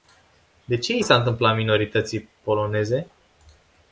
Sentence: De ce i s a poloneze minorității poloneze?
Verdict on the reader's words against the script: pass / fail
fail